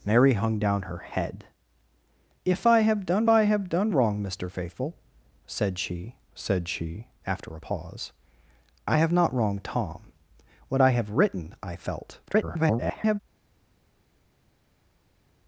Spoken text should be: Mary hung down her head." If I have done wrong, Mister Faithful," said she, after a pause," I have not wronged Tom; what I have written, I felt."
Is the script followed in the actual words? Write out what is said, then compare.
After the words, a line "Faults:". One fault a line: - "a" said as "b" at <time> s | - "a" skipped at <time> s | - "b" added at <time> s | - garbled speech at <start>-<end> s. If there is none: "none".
Mary hung down her head." If I have done I have done wrong, Mister Faithful," said she said she, after a pause," I have not wronged Tom; what I have written, I felt." [garbled]
Faults:
- "I have done" added at 3.3 s
- "said she" added at 6.3 s
- garbled speech at 12.3-13.2 s